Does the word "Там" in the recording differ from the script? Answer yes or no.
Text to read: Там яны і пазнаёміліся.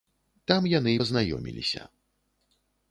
no